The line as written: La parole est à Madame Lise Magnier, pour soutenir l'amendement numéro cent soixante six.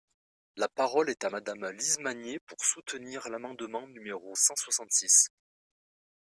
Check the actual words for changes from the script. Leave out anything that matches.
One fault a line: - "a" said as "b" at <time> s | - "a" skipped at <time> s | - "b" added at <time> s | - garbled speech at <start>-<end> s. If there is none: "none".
none